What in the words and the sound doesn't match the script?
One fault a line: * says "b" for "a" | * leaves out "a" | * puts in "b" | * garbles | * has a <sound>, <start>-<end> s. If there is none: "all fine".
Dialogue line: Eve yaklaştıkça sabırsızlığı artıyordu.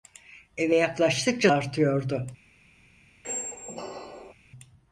* leaves out "sabırsızlığı"
* has a squeak, 3.2-4.3 s